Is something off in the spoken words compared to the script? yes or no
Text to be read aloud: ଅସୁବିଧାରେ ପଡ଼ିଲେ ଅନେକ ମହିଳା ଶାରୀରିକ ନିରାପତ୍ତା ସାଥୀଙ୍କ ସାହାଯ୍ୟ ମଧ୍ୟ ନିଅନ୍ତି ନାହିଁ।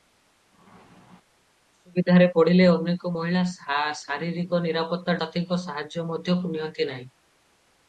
no